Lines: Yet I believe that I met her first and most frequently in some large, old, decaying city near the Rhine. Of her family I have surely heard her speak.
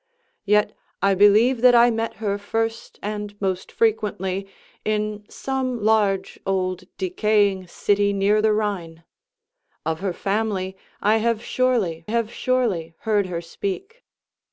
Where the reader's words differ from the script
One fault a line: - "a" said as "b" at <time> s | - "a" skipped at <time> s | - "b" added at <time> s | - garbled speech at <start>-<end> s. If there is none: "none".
- "have surely" added at 12.1 s